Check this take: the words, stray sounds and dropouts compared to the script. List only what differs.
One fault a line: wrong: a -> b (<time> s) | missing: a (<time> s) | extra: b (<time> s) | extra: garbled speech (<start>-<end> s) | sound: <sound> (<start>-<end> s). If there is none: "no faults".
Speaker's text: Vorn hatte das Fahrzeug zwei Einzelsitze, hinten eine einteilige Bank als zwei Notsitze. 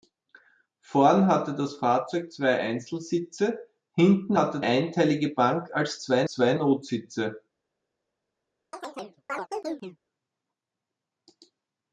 wrong: eine -> hatte (4.3 s)
extra: zwei (6.3 s)
sound: chirp (8.7-10.0 s)